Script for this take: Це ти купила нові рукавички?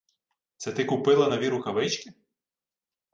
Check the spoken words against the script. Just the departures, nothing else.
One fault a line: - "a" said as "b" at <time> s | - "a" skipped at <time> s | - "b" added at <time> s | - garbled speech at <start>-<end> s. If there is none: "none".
none